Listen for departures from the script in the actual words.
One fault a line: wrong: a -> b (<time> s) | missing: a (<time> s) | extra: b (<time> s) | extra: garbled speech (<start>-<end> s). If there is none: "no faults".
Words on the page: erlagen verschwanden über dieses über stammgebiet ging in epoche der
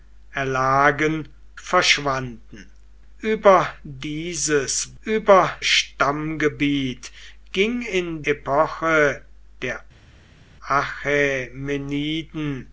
no faults